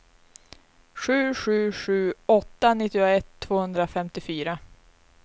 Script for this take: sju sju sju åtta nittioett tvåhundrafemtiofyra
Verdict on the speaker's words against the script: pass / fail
pass